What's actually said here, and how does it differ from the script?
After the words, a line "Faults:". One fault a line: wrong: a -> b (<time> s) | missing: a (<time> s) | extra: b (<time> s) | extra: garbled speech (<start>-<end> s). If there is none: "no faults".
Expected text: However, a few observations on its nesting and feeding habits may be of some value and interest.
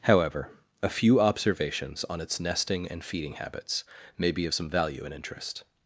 However, a few observations on its nesting and feeding habits may be of some value and interest.
Faults:
no faults